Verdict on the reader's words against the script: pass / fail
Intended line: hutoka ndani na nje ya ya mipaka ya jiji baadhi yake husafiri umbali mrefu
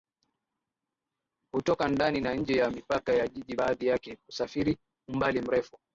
fail